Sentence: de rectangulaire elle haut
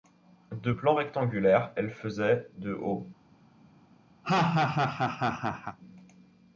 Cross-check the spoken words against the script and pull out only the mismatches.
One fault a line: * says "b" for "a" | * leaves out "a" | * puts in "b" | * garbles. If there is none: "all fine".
* puts in "plan"
* puts in "faisait de"